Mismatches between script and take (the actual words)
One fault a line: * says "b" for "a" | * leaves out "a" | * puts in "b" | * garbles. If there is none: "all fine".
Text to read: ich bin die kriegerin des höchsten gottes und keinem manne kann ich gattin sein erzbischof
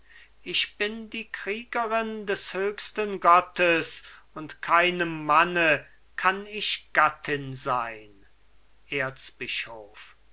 all fine